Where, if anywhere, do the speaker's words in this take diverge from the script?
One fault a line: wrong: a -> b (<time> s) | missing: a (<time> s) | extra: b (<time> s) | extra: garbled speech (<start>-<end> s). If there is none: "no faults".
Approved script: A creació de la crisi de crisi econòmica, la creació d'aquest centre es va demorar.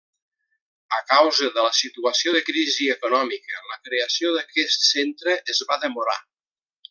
wrong: creació -> causa (1.1 s)
wrong: crisi -> situació (1.8 s)